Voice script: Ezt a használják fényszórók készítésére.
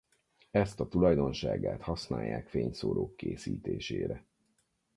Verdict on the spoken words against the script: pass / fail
fail